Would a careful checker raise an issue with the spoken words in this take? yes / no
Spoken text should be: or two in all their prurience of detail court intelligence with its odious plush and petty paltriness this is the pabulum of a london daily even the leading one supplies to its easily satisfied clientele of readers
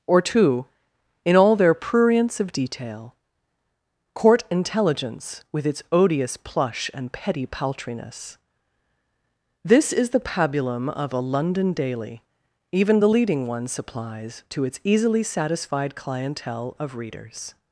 no